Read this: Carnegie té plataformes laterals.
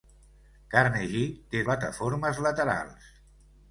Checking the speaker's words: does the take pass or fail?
pass